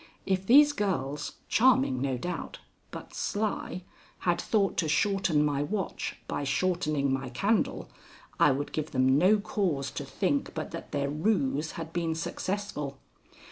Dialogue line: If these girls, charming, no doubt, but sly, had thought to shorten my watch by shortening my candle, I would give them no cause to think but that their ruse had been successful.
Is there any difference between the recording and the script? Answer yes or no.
no